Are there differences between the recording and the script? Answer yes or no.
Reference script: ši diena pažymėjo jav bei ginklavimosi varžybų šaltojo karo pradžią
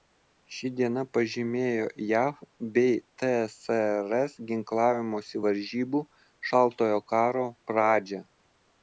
yes